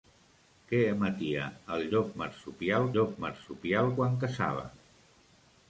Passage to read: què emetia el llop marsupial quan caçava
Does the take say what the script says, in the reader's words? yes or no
no